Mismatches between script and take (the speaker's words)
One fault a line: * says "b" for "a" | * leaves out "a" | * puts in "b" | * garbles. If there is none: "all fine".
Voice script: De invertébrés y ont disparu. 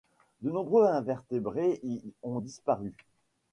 * puts in "nombreux"